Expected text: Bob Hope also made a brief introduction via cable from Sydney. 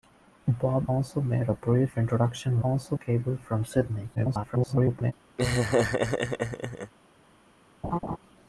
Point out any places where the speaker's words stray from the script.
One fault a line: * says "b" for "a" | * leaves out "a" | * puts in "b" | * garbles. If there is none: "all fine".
* leaves out "Hope"
* says "also" for "via"
* garbles